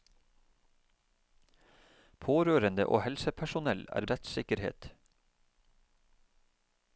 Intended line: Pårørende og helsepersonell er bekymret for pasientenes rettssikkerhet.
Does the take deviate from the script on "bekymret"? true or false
true